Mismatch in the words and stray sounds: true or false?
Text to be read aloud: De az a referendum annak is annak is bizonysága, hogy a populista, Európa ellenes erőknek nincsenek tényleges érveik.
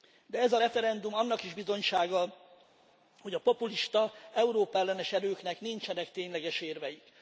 true